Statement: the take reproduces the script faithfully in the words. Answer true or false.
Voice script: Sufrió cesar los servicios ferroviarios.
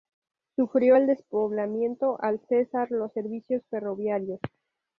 false